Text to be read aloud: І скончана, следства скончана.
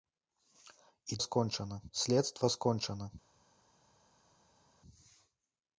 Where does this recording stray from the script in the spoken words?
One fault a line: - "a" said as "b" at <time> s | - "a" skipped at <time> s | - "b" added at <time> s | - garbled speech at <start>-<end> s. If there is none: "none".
none